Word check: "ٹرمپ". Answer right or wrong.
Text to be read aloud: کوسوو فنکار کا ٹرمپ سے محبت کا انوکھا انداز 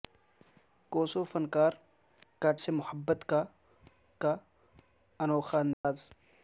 wrong